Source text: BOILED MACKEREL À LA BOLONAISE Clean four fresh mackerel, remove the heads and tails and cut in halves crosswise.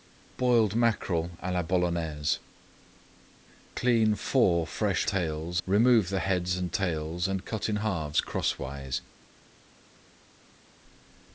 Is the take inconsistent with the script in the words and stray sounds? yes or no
yes